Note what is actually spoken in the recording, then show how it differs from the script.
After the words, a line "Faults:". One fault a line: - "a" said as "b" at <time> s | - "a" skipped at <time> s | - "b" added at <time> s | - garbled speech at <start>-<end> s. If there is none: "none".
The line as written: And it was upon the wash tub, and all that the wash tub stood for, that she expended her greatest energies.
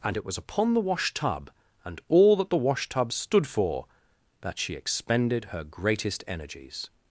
And it was upon the wash tub, and all that the wash tub stood for, that she expended her greatest energies.
Faults:
none